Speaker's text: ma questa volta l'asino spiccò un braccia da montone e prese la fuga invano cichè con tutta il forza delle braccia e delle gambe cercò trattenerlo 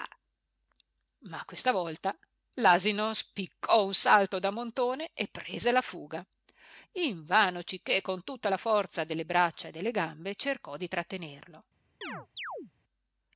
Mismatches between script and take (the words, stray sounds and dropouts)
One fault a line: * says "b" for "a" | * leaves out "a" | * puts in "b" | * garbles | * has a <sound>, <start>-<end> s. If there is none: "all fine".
* says "salto" for "braccia"
* says "la" for "il"
* puts in "di"
* has a chirp, 12.0-12.7 s